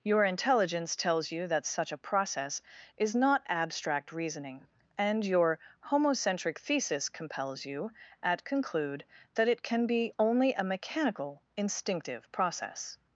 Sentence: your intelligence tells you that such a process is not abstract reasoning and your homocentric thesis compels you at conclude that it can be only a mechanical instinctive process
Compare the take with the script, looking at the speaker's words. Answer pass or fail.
pass